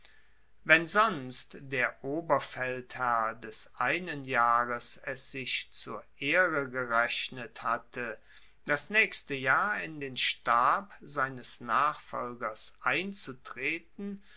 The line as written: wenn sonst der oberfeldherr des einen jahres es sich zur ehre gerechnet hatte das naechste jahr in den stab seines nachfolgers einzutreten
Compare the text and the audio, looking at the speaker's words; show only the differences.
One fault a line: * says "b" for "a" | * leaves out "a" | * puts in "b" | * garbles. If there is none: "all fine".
all fine